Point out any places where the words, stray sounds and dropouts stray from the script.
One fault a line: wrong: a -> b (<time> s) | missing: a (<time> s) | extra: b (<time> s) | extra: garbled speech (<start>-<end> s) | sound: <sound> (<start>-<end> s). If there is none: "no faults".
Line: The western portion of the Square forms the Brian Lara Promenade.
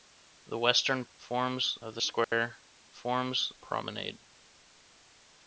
wrong: portion -> forms (1.2 s)
sound: dropout (2.2-2.3 s)
missing: the Brian Lara (3.5 s)